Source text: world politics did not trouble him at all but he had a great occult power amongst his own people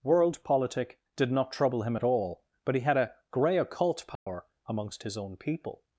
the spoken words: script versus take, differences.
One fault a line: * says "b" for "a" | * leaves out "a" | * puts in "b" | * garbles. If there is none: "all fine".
* says "politic" for "politics"
* says "grey" for "great"